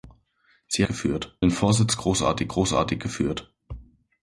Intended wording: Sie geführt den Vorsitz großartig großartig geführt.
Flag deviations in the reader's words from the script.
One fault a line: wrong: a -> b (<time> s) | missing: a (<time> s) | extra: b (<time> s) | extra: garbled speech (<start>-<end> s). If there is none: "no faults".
no faults